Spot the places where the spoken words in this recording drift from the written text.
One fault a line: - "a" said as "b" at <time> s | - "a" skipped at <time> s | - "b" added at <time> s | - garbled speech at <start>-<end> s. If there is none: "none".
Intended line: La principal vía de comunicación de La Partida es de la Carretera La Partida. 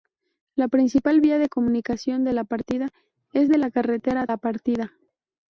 none